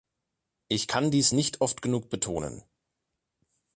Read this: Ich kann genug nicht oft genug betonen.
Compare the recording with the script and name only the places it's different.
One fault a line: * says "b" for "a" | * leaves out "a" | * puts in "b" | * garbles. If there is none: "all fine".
* says "dies" for "genug"